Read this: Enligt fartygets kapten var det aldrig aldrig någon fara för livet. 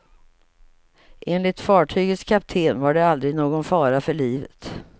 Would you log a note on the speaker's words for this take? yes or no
yes